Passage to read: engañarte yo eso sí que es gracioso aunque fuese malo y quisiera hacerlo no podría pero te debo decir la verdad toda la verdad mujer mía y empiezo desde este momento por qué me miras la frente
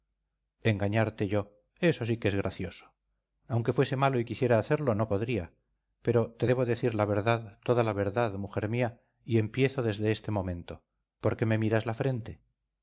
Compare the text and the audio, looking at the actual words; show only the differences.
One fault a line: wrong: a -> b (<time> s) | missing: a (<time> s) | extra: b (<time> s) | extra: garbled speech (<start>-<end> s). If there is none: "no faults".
no faults